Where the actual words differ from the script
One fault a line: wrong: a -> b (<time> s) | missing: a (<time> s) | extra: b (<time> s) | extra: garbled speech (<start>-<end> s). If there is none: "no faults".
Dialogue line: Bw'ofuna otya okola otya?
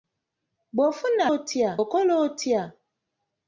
no faults